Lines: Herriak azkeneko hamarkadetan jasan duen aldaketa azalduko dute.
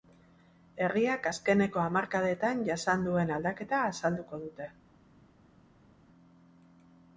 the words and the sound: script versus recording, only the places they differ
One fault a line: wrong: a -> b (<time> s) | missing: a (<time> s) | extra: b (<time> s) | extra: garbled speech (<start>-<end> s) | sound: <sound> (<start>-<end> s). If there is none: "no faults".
no faults